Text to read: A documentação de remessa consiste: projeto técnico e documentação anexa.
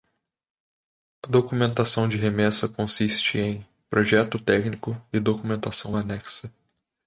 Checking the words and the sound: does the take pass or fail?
fail